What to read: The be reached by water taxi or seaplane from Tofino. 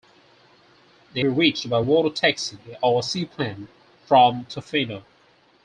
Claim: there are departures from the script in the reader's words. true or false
false